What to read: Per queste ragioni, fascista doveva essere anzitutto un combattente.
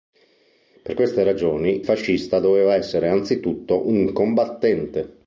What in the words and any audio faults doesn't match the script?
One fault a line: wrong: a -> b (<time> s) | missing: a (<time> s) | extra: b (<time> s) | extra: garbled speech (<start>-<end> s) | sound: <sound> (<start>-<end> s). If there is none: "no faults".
no faults